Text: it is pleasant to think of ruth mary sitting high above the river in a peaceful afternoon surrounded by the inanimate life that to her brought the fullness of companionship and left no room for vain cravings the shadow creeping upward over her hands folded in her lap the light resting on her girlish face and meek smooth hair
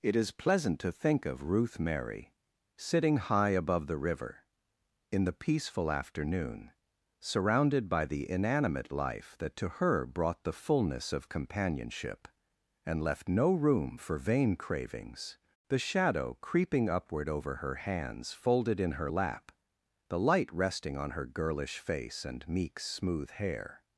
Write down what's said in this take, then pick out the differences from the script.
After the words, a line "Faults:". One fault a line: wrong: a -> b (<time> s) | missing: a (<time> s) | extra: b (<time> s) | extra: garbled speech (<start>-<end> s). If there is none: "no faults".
it is pleasant to think of ruth mary sitting high above the river in the peaceful afternoon surrounded by the inanimate life that to her brought the fullness of companionship and left no room for vain cravings the shadow creeping upward over her hands folded in her lap the light resting on her girlish face and meek smooth hair
Faults:
wrong: a -> the (5.2 s)